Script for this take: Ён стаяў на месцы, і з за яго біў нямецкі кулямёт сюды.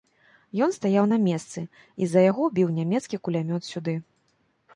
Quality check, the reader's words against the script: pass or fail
pass